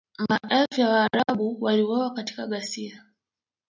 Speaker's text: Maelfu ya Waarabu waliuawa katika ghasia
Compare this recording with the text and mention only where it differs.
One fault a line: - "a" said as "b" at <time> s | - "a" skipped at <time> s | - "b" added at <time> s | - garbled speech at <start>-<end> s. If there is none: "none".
none